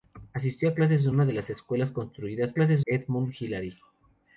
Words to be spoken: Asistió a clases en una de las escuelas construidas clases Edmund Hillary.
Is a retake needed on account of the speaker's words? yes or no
no